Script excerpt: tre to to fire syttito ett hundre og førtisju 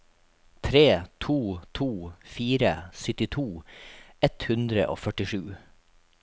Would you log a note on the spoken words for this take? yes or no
no